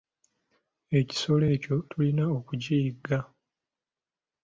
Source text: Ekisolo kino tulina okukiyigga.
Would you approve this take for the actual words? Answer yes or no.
no